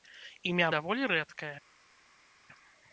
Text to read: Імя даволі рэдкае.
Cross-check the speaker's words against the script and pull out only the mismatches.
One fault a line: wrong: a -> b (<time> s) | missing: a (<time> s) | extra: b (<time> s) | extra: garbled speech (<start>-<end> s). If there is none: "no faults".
no faults